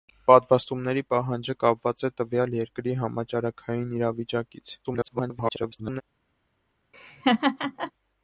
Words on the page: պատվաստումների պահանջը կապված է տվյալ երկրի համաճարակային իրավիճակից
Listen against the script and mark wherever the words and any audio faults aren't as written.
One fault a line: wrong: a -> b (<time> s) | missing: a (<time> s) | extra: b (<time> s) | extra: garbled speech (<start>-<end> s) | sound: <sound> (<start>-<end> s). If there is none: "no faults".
extra: garbled speech (4.8-6.0 s)
sound: laugh (6.9-7.9 s)